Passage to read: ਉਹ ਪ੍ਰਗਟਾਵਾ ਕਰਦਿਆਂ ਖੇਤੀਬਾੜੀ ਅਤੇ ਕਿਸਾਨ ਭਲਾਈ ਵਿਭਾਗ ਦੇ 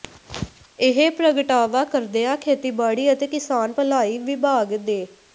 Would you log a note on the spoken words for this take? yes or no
yes